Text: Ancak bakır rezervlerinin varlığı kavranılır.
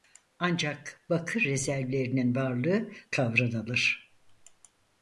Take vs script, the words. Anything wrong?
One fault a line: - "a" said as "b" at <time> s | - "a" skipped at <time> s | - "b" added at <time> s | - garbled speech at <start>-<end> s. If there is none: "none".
none